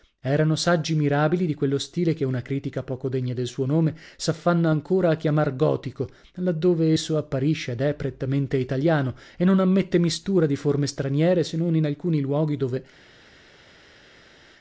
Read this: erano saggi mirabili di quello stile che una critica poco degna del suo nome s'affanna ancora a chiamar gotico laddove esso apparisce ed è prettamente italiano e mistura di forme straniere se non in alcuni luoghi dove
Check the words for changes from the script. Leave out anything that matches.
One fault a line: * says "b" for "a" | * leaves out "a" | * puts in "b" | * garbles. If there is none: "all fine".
* puts in "non ammette"